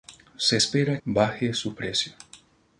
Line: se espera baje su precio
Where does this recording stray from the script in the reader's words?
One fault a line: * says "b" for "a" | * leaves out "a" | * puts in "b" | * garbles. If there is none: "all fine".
all fine